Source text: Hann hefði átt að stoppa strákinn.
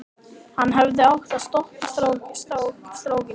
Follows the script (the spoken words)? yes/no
yes